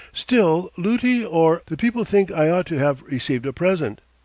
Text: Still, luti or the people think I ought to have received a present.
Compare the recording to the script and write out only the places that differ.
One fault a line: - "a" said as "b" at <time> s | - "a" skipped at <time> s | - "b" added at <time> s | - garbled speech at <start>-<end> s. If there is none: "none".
none